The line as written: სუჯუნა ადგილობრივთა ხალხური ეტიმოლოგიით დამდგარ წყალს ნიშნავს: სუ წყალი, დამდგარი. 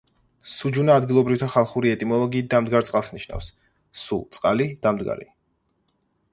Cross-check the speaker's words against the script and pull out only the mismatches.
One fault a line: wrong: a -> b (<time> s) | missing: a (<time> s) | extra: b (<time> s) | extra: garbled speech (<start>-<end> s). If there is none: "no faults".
no faults